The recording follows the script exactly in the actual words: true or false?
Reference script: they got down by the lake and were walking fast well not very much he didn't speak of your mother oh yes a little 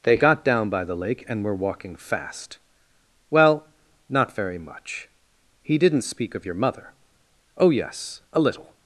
true